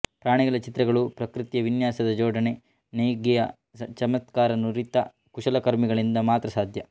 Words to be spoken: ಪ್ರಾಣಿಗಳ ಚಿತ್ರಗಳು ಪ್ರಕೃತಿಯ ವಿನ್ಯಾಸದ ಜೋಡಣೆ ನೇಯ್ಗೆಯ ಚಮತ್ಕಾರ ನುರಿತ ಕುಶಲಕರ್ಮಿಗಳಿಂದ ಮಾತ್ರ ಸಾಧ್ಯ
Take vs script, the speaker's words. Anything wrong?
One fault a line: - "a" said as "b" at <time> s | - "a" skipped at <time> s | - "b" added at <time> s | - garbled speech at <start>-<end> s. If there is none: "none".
none